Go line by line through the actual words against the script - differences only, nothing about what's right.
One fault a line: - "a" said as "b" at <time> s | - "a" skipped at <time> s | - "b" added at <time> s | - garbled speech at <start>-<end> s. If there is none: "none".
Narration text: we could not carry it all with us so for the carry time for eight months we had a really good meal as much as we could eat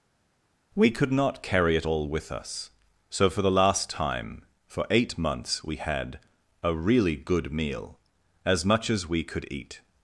- "carry" said as "last" at 3.5 s